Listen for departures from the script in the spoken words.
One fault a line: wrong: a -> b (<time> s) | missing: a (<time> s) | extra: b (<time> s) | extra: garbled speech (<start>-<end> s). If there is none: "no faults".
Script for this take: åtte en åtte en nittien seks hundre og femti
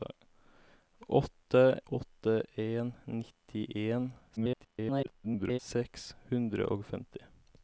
missing: en (1.8 s)
extra: garbled speech (4.4-5.6 s)